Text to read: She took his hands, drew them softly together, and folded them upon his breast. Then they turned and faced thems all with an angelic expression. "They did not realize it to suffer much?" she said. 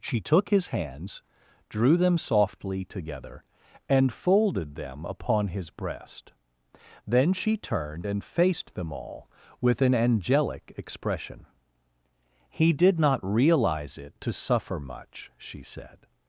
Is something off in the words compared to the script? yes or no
yes